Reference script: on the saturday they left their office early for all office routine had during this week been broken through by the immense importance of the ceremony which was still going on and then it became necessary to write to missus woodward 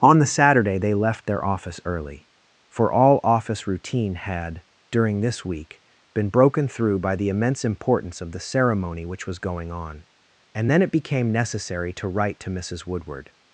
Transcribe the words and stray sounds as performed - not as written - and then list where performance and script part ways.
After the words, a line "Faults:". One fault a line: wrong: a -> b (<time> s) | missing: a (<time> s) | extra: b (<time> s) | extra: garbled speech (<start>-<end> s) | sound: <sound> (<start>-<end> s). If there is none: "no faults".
on the saturday they left their office early for all office routine had during this week been broken through by the immense importance of the ceremony which was going on and then it became necessary to write to missus woodward
Faults:
missing: still (9.4 s)